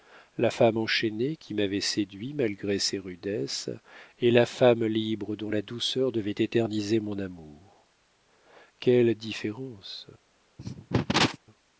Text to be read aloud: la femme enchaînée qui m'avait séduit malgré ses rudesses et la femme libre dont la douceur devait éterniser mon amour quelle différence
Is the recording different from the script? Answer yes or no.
no